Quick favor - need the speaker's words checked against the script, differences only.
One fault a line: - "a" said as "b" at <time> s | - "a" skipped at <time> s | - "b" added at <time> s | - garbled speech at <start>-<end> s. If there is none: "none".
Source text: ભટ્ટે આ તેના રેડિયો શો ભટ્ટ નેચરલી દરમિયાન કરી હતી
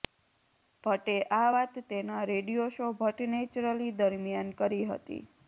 - "વાત" added at 1.5 s